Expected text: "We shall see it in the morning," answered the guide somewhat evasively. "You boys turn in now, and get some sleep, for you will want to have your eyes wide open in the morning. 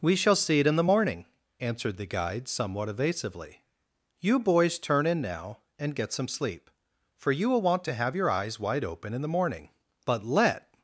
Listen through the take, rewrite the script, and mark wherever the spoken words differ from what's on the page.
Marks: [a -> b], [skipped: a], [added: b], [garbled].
"We shall see it in the morning," answered the guide somewhat evasively. "You boys turn in now, and get some sleep, for you will want to have your eyes wide open in the morning. [added: But let]